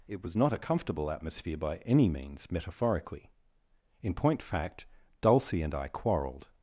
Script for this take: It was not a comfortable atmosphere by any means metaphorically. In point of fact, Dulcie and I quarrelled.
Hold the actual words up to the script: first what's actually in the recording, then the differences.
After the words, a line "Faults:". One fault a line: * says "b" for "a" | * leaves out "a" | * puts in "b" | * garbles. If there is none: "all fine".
It was not a comfortable atmosphere by any means metaphorically. In point fact, Dulcie and I quarrelled.
Faults:
* leaves out "of"